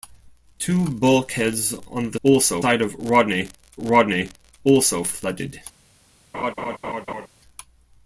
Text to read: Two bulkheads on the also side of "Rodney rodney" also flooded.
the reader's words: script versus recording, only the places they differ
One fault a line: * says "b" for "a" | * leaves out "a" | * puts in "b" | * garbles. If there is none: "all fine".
all fine